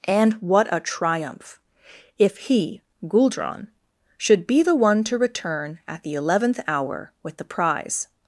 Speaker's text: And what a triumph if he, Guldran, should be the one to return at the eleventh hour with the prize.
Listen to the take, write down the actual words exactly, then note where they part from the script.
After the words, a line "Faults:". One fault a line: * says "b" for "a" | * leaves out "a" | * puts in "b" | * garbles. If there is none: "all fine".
And what a triumph if he, Guldran, should be the one to return at the eleventh hour with the prize.
Faults:
all fine